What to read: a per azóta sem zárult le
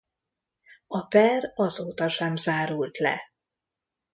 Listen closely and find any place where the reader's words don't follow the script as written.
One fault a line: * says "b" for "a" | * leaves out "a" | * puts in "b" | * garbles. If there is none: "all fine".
all fine